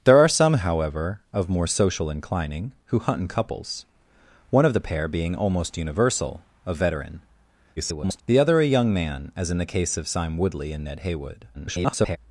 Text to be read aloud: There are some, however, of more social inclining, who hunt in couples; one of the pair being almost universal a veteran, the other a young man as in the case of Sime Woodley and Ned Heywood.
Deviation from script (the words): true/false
true